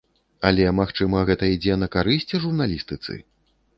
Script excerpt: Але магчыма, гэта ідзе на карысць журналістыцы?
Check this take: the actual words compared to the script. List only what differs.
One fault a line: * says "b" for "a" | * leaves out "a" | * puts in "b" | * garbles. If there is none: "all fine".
all fine